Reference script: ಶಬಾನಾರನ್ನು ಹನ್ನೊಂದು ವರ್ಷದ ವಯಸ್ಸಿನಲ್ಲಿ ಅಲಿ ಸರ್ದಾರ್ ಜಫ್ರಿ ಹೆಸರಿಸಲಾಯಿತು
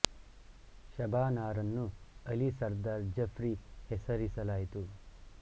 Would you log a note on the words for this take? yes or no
yes